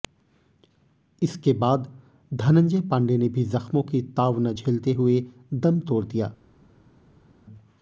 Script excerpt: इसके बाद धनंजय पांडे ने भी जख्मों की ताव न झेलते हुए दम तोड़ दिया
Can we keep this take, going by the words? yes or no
yes